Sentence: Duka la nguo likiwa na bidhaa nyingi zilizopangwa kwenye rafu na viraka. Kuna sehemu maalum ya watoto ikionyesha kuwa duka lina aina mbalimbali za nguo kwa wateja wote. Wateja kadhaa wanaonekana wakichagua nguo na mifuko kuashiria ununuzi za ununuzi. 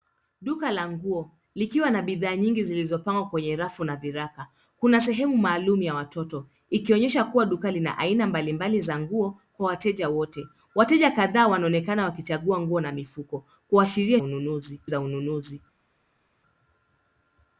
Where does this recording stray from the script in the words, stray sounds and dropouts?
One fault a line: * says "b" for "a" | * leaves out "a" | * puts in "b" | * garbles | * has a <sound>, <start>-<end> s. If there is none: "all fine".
all fine